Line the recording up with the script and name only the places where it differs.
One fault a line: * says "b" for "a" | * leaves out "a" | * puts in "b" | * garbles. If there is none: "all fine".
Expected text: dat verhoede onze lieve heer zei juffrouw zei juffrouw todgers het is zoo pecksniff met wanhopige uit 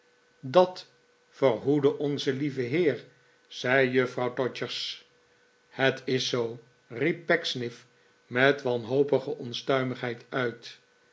* leaves out "zei juffrouw"
* puts in "riep"
* puts in "onstuimigheid"